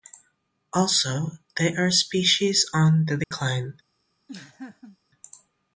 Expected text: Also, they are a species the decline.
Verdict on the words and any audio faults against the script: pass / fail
fail